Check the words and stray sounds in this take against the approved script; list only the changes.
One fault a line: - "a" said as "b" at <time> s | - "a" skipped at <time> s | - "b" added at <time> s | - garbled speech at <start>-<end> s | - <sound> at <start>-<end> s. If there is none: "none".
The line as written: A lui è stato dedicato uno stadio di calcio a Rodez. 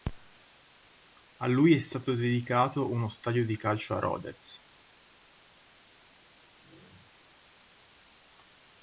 none